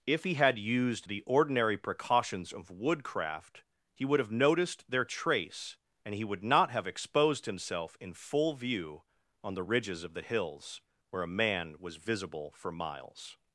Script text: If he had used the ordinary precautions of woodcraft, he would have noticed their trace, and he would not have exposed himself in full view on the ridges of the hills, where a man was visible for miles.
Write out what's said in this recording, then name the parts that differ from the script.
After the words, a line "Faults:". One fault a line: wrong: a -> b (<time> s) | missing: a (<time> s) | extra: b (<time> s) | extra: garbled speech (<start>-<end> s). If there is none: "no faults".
If he had used the ordinary precautions of woodcraft, he would have noticed their trace, and he would not have exposed himself in full view on the ridges of the hills, where a man was visible for miles.
Faults:
no faults